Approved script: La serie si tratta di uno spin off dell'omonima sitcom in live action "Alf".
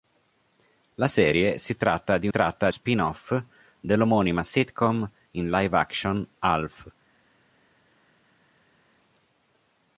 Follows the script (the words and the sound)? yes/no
no